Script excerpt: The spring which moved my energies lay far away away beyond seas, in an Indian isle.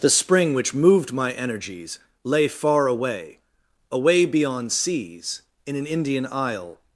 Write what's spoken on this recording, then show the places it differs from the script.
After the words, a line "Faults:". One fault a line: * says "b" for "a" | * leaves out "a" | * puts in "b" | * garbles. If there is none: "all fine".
The spring which moved my energies lay far away away beyond seas, in an Indian isle.
Faults:
all fine